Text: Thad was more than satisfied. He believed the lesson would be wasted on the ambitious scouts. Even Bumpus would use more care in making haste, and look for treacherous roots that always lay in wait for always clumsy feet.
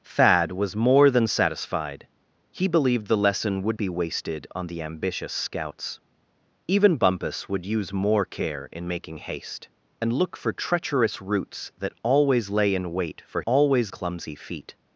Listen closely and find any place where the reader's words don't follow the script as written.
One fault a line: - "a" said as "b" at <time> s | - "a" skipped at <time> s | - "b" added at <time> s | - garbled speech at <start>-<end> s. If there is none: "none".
none